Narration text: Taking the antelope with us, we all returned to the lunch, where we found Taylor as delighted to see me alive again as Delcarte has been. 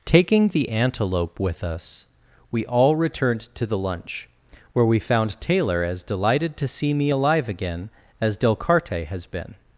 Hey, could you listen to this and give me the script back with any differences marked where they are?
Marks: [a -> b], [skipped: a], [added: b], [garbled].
Taking the antelope with us, we all returned to the lunch, where we found Taylor as delighted to see me alive again as Delcarte has been.